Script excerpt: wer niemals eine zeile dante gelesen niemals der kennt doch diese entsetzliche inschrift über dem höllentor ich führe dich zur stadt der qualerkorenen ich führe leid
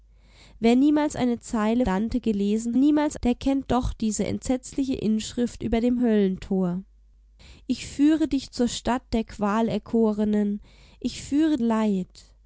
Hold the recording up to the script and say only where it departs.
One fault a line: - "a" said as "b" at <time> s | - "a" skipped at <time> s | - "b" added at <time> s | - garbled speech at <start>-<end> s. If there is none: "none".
none